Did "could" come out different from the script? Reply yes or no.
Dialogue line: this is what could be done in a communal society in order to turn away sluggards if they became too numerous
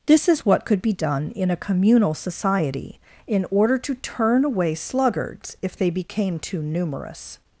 no